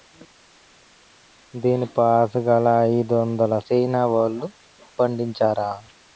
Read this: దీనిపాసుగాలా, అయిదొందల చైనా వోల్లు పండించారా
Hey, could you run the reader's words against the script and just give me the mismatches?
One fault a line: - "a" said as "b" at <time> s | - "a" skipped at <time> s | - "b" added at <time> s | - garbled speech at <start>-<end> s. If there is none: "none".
none